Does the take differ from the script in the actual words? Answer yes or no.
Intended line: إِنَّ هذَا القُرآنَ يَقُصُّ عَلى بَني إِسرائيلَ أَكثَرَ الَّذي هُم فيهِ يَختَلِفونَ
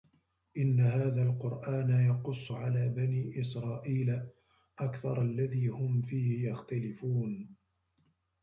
no